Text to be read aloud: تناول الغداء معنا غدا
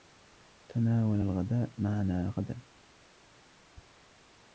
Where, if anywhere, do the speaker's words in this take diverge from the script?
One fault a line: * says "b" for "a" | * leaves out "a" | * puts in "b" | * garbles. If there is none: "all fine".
all fine